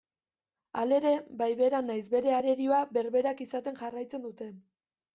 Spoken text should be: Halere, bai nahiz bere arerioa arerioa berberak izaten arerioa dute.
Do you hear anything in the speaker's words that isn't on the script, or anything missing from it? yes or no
yes